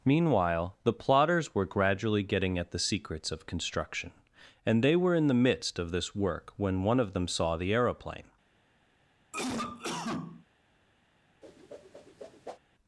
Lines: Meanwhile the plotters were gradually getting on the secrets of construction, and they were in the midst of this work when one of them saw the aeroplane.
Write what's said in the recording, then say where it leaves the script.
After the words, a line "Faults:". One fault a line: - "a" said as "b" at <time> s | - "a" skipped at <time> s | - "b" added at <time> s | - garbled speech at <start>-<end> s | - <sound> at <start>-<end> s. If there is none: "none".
Meanwhile the plotters were gradually getting at the secrets of construction, and they were in the midst of this work when one of them saw the aeroplane.
Faults:
- "on" said as "at" at 2.6 s
- cough at 9.3-10.5 s
- whoosh at 11.4-12.6 s